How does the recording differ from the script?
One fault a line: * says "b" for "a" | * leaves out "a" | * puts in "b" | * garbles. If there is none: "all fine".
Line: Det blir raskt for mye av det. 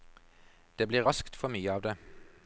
all fine